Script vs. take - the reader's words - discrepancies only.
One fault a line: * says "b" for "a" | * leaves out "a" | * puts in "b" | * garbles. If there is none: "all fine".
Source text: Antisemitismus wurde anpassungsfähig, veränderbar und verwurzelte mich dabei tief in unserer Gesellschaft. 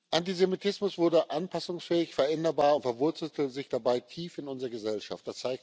* says "sich" for "mich"